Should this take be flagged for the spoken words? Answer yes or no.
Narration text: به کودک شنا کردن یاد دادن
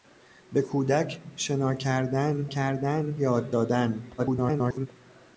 yes